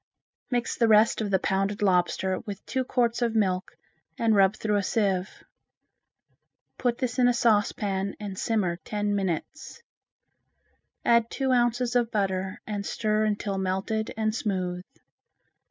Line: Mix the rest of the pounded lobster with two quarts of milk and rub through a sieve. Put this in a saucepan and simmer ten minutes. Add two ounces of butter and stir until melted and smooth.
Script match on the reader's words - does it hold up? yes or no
yes